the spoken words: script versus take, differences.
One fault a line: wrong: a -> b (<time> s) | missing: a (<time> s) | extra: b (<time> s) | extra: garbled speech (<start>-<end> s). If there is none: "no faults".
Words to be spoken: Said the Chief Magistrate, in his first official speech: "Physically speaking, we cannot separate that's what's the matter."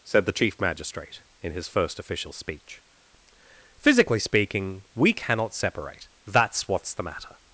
no faults